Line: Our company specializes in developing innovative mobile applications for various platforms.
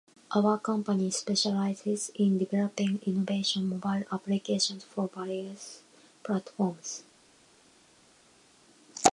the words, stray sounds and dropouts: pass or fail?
pass